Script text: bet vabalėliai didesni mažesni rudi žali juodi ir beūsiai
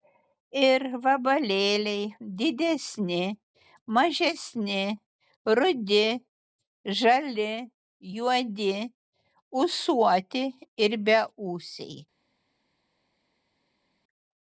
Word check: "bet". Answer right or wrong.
wrong